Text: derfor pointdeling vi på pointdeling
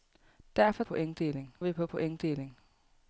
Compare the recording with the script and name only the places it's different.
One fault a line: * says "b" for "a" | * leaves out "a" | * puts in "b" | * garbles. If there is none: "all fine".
all fine